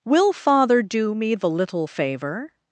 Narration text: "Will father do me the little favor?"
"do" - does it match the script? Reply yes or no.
yes